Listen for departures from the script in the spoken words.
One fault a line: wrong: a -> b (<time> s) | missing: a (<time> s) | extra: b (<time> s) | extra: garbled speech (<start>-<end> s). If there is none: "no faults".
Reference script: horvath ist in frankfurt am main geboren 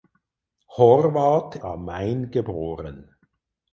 missing: ist in frankfurt (1.6 s)